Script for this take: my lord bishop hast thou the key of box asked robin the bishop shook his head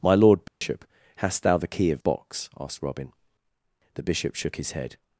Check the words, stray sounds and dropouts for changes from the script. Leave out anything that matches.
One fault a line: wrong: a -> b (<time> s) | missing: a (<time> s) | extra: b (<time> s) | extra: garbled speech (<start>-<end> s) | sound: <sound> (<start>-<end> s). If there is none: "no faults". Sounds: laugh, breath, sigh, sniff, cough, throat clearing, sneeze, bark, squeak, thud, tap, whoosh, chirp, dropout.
sound: dropout (0.5-0.6 s)